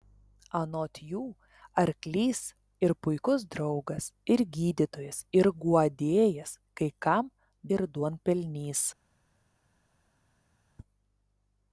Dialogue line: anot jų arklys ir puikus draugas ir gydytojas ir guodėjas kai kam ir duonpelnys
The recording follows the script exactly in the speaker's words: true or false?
true